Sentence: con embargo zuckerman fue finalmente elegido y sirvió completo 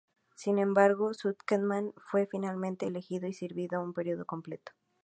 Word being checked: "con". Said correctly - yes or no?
no